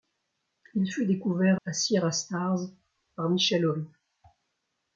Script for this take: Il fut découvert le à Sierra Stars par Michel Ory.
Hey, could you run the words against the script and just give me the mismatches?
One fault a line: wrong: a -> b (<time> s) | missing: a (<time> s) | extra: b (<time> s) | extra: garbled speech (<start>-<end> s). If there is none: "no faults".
missing: le (1.6 s)